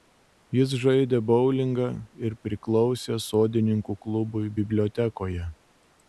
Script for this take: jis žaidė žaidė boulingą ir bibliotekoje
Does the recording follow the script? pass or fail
fail